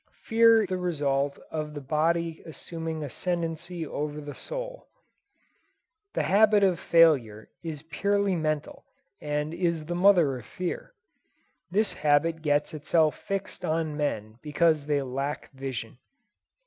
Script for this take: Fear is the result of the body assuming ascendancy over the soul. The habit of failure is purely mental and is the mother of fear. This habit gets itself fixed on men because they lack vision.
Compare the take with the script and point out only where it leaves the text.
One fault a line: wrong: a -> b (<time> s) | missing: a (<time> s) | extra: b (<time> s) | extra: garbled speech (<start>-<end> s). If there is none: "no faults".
missing: is (0.6 s)